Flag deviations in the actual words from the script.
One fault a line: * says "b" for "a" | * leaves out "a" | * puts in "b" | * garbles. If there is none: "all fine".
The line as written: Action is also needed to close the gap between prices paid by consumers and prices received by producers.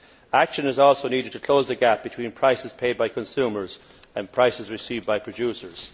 all fine